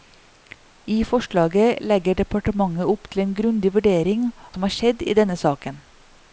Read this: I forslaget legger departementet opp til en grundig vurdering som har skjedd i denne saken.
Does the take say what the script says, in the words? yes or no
yes